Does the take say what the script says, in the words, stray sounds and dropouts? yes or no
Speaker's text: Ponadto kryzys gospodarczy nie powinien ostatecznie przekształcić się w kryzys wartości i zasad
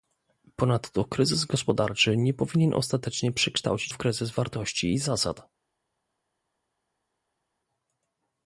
no